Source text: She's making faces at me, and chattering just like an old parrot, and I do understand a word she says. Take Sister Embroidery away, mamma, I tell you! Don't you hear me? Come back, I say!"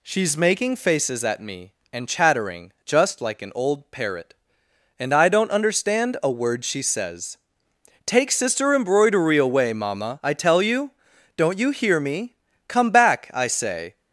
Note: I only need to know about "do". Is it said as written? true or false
false